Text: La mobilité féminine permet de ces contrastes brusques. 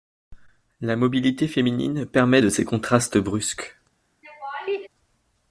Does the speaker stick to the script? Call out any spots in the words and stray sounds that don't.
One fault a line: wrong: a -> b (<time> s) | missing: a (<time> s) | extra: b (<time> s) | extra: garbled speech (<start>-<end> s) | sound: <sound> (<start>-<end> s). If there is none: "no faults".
sound: laugh (4.2-4.9 s)